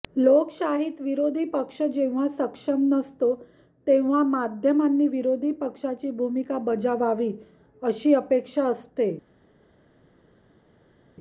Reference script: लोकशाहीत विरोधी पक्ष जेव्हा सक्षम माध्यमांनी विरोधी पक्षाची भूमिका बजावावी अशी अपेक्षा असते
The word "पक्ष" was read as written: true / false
true